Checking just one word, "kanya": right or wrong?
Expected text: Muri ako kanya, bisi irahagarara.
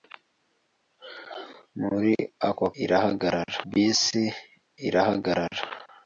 wrong